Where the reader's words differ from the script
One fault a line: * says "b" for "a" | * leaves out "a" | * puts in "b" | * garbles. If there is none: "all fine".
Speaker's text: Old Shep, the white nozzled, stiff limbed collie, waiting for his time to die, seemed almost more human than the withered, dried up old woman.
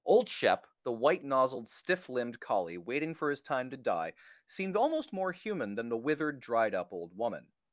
all fine